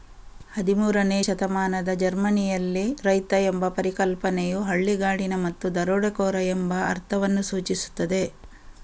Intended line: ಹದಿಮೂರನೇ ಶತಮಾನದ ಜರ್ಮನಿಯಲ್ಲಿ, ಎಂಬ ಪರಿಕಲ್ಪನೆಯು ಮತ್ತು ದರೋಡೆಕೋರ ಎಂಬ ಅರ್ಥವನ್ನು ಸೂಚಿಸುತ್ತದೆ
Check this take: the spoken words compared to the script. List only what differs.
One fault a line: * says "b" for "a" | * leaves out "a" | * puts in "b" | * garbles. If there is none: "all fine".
* puts in "ರೈತ"
* puts in "ಹಳ್ಳಿಗಾಡಿನ"